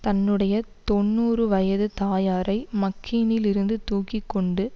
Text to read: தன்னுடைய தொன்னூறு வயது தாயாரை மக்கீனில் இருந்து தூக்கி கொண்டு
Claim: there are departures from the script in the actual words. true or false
false